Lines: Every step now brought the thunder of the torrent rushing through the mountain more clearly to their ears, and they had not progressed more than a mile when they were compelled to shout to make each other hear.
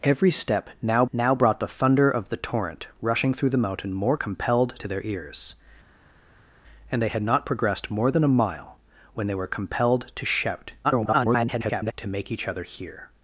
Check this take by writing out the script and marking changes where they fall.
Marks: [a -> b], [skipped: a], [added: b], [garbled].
Every step now [added: now] brought the thunder of the torrent rushing through the mountain more [clearly -> compelled] to their ears, and they had not progressed more than a mile when they were compelled to shout [garbled] to make each other hear.